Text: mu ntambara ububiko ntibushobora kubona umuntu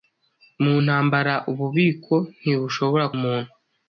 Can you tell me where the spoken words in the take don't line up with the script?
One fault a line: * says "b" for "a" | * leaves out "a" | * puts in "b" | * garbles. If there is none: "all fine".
* leaves out "kubona"